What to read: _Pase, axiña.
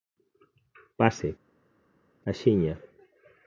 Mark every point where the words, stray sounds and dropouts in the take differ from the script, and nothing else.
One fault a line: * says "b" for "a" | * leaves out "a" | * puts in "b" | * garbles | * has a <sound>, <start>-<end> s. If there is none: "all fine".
all fine